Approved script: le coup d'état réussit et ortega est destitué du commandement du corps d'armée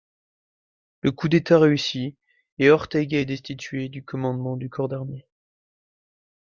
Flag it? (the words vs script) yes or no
no